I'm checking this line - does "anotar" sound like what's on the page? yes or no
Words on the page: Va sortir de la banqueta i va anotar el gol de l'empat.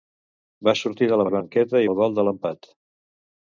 no